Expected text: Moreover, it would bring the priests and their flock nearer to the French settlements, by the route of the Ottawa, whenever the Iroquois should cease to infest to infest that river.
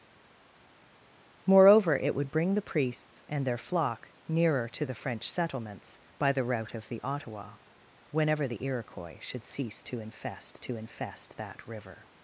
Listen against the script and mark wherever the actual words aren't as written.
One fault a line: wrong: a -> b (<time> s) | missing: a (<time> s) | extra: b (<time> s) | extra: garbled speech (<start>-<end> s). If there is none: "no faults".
no faults